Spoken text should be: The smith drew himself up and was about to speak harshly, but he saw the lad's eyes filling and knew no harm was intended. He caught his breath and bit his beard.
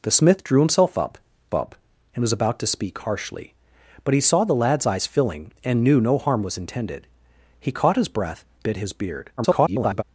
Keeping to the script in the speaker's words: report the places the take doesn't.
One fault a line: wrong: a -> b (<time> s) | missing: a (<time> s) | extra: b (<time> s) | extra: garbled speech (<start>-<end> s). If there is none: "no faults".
extra: up (1.5 s)
missing: and (8.4 s)
extra: garbled speech (9.4-10.0 s)